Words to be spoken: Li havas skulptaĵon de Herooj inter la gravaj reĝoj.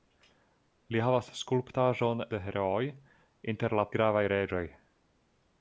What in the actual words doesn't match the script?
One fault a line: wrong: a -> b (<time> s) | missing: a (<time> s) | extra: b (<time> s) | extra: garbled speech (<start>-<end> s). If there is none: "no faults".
no faults